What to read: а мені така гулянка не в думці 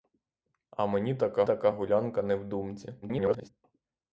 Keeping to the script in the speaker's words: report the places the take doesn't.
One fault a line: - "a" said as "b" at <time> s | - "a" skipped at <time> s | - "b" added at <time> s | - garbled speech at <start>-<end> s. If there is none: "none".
- "така" added at 1.4 s
- garbled speech at 3.0-3.5 s